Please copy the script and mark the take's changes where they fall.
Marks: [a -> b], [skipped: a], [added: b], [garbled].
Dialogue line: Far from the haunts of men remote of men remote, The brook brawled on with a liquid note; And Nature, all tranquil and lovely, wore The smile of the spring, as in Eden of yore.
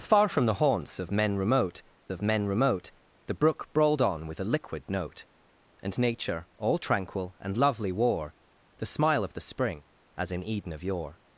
Far from the haunts of men remote of men remote, The brook brawled on with a liquid note; And Nature, all tranquil and lovely, wore The smile of the spring, as in Eden of yore.